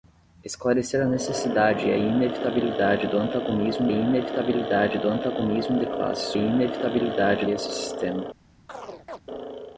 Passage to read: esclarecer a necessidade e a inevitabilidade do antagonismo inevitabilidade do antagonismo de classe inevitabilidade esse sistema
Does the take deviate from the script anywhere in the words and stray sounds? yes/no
yes